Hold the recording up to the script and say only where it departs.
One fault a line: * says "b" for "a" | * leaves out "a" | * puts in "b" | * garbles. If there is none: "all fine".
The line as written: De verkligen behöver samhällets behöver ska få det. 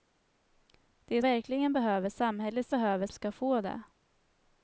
all fine